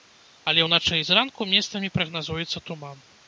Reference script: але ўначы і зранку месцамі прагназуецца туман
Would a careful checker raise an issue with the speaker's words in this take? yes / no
no